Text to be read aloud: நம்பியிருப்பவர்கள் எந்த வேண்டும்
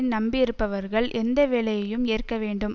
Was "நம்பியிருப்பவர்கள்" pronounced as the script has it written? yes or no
yes